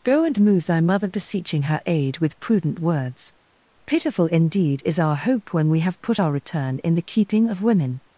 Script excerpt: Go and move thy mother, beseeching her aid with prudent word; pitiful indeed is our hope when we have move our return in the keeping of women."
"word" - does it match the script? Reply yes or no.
no